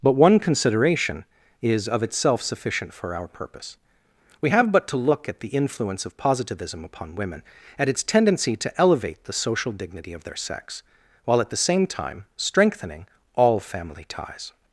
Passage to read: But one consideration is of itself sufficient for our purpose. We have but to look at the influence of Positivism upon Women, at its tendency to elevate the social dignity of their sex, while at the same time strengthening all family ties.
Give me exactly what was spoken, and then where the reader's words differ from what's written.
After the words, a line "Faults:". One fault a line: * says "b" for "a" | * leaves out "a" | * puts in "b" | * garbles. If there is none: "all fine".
But one consideration is of itself sufficient for our purpose. We have but to look at the influence of Positivism upon Women, at its tendency to elevate the social dignity of their sex, while at the same time strengthening all family ties.
Faults:
all fine